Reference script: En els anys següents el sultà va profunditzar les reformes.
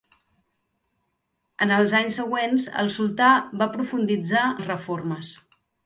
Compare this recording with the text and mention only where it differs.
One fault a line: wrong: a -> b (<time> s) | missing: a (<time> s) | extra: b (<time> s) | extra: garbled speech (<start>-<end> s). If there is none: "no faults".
no faults